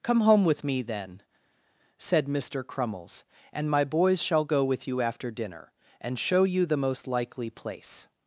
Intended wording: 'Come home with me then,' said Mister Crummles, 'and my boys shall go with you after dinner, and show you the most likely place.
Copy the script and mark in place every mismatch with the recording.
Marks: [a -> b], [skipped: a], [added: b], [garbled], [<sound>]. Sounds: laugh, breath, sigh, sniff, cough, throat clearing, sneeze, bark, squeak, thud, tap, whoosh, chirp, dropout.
'Come home with me then,' said Mister Crummles, 'and my boys shall go with you after dinner, and show you the most likely place.